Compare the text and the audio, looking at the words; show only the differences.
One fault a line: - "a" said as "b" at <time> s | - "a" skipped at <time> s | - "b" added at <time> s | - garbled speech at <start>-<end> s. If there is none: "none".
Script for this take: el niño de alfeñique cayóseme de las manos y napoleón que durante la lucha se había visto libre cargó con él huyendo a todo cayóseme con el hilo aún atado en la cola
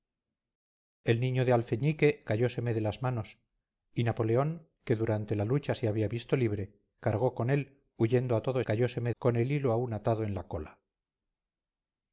none